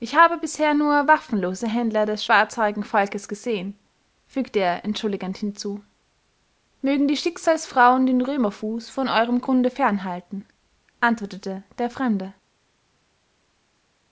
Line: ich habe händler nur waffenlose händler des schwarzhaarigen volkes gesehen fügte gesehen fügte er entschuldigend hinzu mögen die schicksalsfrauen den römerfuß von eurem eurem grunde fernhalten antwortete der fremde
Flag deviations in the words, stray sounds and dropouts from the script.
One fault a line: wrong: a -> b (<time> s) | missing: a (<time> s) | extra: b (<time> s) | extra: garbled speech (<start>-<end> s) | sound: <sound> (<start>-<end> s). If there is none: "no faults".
wrong: händler -> bisher (0.4 s)
missing: gesehen fügte (4.6 s)
missing: eurem (9.4 s)